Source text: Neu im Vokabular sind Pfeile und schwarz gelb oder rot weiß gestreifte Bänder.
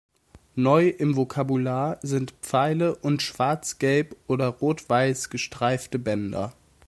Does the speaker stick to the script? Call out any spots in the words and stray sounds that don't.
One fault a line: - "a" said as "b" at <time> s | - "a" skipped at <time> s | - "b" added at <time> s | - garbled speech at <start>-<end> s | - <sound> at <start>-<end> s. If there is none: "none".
none